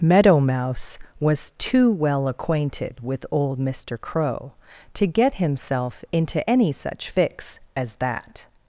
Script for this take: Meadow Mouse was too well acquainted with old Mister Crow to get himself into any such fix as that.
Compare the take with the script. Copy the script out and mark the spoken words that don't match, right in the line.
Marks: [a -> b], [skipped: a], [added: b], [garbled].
Meadow Mouse was too well acquainted with old Mister Crow to get himself into any such fix as that.